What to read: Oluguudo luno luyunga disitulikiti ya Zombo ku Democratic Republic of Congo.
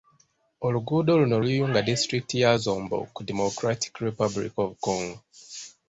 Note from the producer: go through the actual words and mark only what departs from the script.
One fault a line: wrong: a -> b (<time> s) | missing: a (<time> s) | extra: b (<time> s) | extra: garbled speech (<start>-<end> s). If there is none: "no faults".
no faults